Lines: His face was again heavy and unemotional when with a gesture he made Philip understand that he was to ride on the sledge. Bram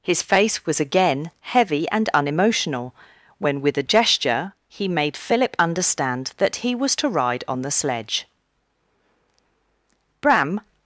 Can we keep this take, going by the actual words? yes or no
yes